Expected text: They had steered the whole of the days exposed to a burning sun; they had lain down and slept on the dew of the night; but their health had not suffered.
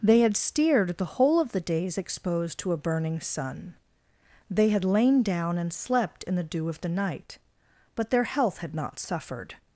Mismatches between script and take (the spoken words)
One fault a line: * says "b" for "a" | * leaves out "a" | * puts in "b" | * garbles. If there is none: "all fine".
* says "in" for "on"